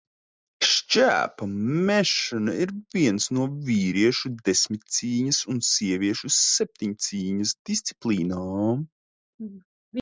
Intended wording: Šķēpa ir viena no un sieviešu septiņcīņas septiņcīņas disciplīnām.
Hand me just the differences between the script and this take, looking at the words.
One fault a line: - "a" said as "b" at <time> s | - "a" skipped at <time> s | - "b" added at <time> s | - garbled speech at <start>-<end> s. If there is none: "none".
- "mešana" added at 1.9 s
- "vīriešu desmitcīņas" added at 3.7 s
- "septiņcīņas" skipped at 7.6 s